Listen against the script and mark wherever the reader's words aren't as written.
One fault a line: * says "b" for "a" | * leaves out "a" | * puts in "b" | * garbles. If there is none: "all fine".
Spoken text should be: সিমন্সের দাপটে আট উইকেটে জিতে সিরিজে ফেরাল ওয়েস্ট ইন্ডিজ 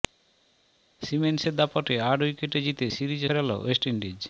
all fine